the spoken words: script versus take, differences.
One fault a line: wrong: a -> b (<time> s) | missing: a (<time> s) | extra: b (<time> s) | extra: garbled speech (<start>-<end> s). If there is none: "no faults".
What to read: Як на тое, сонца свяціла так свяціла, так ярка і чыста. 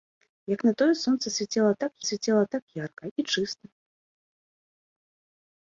no faults